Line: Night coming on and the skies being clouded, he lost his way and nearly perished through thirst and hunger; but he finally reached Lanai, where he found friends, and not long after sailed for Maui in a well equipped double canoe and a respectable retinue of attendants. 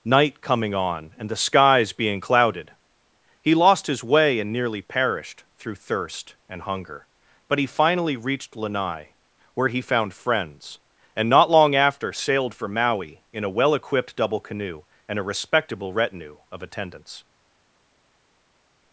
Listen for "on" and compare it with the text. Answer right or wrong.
right